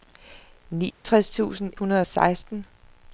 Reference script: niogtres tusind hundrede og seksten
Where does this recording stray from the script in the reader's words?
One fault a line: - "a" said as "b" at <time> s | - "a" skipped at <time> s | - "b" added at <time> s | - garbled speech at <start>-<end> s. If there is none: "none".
none